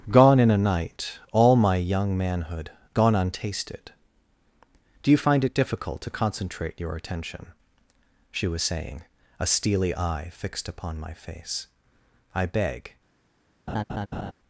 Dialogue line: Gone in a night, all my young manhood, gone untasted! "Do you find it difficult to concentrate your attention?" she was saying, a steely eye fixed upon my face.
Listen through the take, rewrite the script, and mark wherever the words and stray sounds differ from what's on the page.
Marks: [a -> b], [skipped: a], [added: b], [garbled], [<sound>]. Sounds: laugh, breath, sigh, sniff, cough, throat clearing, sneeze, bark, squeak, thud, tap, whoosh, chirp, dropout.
Gone in a night, all my young manhood, gone untasted! "Do you find it difficult to concentrate your attention?" she was saying, a steely eye fixed upon my face. [added: I beg] [laugh]